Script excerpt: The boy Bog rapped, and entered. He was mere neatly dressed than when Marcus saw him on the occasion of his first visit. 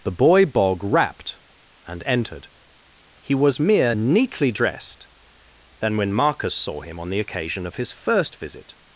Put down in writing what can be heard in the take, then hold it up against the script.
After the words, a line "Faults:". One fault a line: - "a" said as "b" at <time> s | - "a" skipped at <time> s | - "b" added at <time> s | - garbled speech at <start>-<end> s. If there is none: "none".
The boy Bog rapped, and entered. He was mere neatly dressed than when Marcus saw him on the occasion of his first visit.
Faults:
none